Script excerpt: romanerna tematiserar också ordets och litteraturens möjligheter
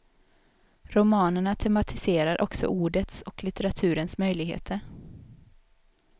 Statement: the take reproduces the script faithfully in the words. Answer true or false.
true